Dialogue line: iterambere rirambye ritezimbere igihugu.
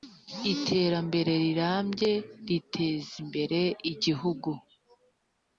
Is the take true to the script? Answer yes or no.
yes